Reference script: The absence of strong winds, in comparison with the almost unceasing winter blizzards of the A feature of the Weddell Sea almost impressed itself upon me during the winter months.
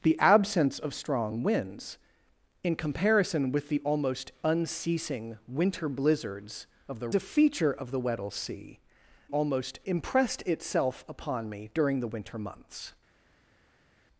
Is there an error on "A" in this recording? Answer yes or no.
no